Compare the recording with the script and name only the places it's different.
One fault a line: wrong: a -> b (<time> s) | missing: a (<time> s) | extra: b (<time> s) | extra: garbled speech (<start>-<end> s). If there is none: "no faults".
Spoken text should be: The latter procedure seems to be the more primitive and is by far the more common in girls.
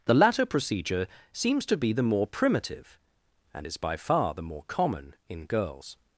no faults